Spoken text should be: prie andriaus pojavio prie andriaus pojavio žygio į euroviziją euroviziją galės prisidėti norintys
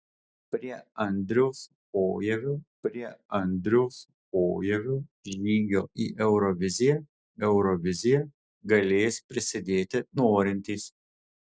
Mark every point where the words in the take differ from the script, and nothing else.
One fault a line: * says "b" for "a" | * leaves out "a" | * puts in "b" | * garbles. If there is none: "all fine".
all fine